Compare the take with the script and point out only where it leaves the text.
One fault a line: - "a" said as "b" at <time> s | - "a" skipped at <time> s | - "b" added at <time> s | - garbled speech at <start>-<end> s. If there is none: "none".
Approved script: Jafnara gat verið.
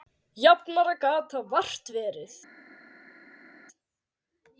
- "það vart" added at 1.4 s